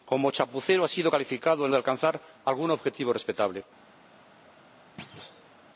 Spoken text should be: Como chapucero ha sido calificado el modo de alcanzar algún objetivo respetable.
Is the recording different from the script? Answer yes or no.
yes